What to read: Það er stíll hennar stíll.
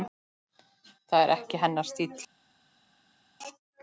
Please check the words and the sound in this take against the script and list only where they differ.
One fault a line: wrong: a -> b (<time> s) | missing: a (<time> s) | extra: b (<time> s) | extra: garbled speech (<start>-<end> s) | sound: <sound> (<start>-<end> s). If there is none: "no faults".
wrong: stíll -> ekki (1.4 s)